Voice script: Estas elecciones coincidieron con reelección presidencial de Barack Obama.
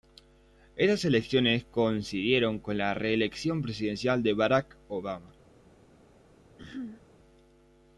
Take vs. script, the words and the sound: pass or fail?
fail